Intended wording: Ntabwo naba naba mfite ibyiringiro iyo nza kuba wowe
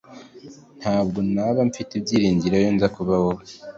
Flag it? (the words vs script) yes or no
yes